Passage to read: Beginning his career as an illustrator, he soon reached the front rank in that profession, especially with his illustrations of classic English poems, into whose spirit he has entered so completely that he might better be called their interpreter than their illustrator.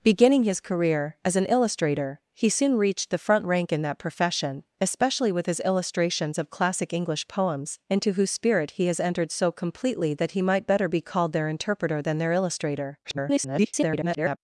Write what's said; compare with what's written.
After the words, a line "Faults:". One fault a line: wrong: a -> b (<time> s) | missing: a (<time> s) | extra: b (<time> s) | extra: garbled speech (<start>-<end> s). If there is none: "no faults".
Beginning his career as an illustrator, he soon reached the front rank in that profession, especially with his illustrations of classic English poems, into whose spirit he has entered so completely that he might better be called their interpreter than their illustrator. [garbled]
Faults:
extra: garbled speech (13.0-14.4 s)